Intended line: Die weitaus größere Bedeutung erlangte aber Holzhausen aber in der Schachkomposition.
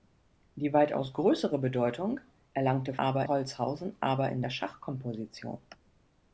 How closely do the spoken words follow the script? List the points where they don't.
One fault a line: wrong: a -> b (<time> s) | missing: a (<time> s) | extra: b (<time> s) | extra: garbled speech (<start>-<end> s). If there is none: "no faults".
no faults